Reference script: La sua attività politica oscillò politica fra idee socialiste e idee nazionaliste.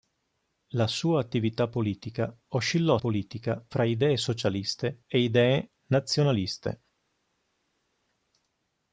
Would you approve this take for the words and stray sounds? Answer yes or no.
yes